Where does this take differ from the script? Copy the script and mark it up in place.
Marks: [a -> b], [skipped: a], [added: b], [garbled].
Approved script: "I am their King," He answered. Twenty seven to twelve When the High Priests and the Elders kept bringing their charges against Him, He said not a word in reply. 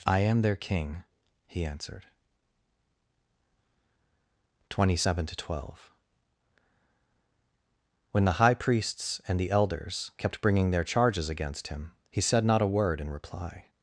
"I am their King," He answered. Twenty seven to twelve When the High Priests and the Elders kept bringing their charges against Him, He said not a word in reply.